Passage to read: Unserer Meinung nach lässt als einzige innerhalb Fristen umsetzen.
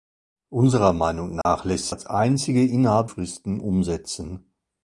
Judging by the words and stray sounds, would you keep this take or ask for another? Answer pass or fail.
fail